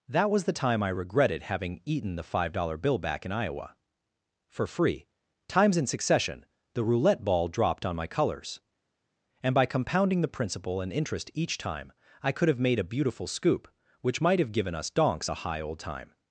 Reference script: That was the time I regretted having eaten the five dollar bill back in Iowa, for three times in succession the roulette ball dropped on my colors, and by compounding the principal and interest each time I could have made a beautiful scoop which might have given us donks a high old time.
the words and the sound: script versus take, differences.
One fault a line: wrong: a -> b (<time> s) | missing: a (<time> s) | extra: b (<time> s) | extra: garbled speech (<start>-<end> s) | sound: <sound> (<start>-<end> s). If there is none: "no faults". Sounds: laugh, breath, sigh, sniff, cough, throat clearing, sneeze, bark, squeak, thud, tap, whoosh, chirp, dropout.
wrong: three -> free (4.7 s)